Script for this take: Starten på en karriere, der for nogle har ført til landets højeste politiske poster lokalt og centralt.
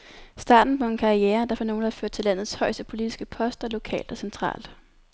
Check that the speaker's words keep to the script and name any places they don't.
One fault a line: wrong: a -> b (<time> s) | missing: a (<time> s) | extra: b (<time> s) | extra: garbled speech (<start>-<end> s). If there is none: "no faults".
no faults